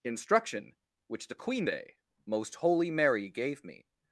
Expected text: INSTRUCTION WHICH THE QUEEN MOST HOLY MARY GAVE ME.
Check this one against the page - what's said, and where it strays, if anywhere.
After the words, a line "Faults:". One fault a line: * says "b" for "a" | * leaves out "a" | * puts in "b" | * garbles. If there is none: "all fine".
INSTRUCTION WHICH THE QUEEN day MOST HOLY MARY GAVE ME.
Faults:
* puts in "day"